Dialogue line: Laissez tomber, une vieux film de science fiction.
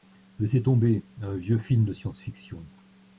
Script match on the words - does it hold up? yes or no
no